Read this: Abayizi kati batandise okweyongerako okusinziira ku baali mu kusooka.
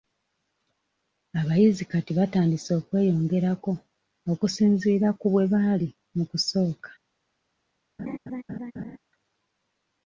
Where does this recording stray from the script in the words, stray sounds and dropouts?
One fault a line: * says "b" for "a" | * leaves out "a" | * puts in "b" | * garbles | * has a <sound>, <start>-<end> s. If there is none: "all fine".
* puts in "bwe"
* has a laugh, 8.0-9.0 s